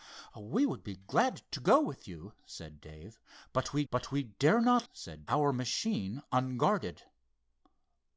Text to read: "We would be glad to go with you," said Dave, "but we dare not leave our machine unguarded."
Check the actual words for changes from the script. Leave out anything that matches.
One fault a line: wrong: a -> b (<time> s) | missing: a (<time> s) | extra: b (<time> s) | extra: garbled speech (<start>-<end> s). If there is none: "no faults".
extra: but we (3.9 s)
wrong: leave -> said (4.9 s)